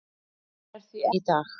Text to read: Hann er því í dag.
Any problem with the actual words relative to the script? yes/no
no